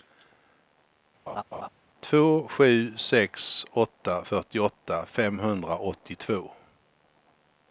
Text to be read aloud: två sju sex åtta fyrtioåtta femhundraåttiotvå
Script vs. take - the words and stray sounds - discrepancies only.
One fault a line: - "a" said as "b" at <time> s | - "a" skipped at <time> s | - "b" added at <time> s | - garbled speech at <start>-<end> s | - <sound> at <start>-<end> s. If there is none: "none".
- laugh at 1.3-1.7 s